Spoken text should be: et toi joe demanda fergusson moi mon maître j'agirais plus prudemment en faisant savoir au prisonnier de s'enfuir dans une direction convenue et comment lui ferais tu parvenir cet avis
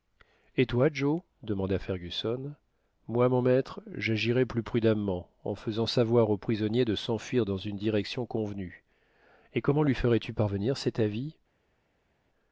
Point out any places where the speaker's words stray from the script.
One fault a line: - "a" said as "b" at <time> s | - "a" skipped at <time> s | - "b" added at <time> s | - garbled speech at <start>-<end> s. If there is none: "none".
none